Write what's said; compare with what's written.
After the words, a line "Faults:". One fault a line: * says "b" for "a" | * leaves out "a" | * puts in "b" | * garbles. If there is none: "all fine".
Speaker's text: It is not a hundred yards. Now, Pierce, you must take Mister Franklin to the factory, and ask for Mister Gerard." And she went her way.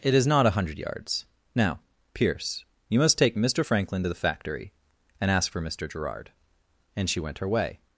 It is not a hundred yards. Now, Pierce, you must take Mister Franklin to the factory, and ask for Mister Gerard." And she went her way.
Faults:
all fine